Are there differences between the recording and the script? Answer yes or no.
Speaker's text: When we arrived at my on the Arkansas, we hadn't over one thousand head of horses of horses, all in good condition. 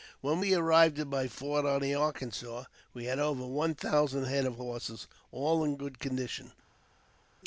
yes